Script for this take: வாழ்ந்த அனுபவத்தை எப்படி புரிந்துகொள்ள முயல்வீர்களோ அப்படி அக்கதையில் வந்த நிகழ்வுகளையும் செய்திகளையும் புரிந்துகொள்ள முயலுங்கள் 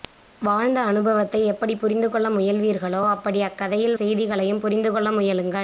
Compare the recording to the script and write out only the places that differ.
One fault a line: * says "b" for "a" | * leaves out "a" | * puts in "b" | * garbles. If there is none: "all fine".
* leaves out "வந்த நிகழ்வுகளையும்"